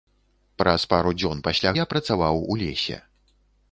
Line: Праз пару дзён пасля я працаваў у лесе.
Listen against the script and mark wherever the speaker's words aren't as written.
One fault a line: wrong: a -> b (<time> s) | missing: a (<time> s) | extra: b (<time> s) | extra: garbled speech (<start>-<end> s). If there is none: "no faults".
no faults